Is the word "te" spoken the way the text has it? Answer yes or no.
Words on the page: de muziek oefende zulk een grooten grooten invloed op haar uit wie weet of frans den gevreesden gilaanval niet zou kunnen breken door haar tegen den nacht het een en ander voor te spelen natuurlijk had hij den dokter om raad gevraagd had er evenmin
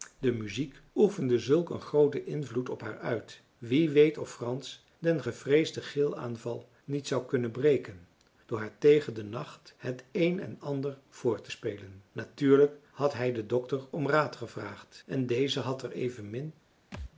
yes